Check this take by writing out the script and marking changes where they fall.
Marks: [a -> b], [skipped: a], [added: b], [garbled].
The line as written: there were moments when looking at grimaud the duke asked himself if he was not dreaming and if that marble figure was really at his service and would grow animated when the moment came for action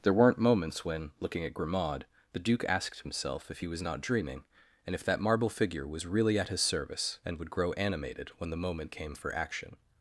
there [were -> weren't] moments when looking at grimaud the duke asked himself if he was not dreaming and if that marble figure was really at his service and would grow animated when the moment came for action